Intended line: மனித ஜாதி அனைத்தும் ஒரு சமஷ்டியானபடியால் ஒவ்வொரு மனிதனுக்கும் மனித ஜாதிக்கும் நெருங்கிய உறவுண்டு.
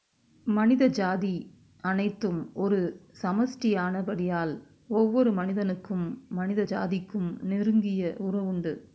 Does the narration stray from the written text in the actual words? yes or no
no